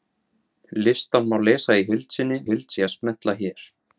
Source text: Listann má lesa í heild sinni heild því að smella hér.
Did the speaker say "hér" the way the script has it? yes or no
yes